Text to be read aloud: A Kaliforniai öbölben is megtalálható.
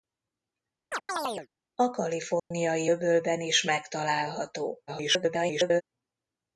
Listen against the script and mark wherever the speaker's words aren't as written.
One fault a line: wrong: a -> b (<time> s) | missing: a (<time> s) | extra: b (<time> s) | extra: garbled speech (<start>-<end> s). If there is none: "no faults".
extra: garbled speech (4.9-5.8 s)